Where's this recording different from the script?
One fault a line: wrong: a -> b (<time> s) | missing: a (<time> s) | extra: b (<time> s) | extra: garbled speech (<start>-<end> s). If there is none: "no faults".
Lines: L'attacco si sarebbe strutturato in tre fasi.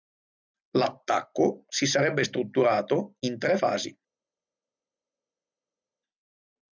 no faults